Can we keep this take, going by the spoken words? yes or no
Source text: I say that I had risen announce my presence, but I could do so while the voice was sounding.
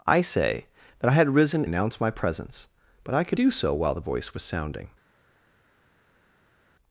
yes